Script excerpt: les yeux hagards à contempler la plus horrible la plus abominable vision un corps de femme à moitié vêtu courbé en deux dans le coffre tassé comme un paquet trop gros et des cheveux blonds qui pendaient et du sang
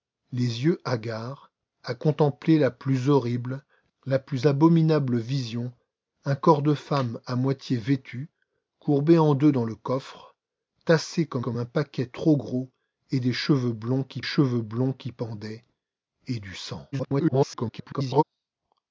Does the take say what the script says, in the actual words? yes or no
no